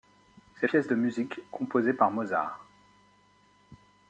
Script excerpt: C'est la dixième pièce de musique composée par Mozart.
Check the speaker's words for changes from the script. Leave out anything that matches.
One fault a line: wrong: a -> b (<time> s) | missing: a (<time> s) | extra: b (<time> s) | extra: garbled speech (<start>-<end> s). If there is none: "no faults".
missing: la dixième (0.7 s)